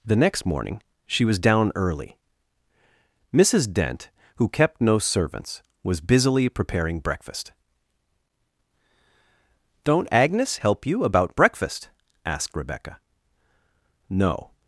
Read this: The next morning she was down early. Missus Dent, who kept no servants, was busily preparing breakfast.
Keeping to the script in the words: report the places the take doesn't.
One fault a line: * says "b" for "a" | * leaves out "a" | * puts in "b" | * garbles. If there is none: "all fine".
* puts in "Don't Agnes help you about breakfast asked Rebecca No"